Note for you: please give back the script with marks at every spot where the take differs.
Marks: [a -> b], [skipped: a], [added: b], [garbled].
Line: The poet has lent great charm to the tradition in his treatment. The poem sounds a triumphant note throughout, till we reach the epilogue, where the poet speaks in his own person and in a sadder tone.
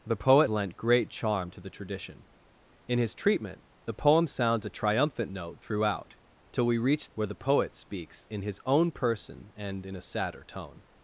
The poet [skipped: has] lent great charm to the tradition in his treatment. The poem sounds a triumphant note throughout, till we reach [skipped: the epilogue,] where the poet speaks in his own person and in a sadder tone.